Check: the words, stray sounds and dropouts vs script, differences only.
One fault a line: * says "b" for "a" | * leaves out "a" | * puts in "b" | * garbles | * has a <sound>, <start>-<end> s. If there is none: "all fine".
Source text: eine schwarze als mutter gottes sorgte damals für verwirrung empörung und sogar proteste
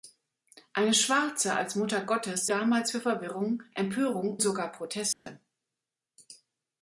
* leaves out "sorgte"
* leaves out "und"
* has a dropout, 5.1-5.3 s